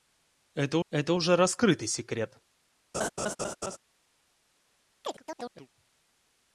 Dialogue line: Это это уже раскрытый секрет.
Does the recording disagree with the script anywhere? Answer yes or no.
no